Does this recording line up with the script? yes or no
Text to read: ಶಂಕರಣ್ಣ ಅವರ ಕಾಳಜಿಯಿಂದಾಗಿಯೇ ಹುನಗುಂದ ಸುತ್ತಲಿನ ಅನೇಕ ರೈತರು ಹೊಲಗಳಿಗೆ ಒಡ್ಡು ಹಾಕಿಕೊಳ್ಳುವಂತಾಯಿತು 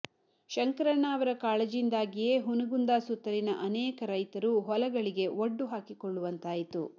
yes